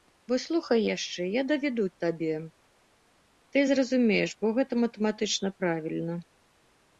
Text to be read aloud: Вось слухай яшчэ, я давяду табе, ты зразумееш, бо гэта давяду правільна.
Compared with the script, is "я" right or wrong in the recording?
right